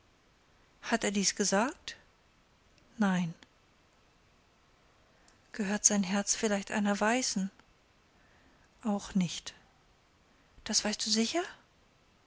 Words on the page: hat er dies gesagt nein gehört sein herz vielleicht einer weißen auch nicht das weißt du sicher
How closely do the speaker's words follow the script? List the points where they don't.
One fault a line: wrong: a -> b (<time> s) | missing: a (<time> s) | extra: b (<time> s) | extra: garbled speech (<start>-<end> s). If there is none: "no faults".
no faults